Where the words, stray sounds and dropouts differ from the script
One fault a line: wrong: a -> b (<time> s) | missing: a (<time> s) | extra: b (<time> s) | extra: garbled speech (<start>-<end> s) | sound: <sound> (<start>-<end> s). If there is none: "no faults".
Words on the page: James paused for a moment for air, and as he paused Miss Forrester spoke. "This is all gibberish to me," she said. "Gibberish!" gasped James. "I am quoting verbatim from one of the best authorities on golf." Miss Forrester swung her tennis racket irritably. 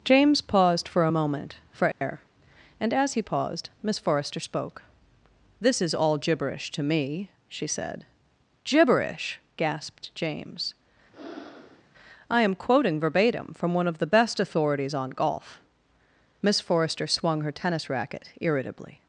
sound: dropout (1.9-2.0 s)
sound: breath (11.1-11.8 s)